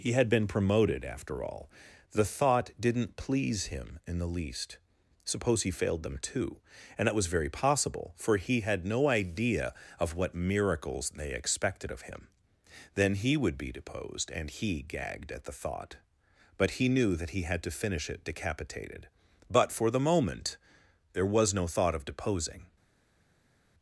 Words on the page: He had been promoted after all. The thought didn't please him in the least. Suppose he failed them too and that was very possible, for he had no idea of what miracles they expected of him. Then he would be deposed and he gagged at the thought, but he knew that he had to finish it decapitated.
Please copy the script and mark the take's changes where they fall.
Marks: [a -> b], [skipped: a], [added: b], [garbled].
He had been promoted after all. The thought didn't please him in the least. Suppose he failed them too and that was very possible, for he had no idea of what miracles they expected of him. Then he would be deposed and he gagged at the thought, but he knew that he had to finish it decapitated. [added: But for the moment there was no thought of deposing]